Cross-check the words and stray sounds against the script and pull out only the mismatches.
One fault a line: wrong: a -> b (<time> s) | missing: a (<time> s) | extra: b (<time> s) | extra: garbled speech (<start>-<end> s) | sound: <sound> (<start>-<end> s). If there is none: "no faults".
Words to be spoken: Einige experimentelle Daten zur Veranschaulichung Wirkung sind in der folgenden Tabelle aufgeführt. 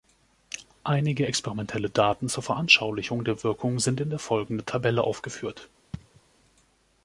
extra: der (3.2 s)
sound: sneeze (5.9-6.2 s)